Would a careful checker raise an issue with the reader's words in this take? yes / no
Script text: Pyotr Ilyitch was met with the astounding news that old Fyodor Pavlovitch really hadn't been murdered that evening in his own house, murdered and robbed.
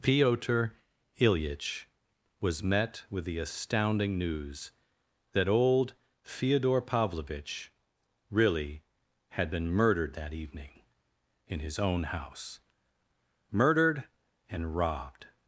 yes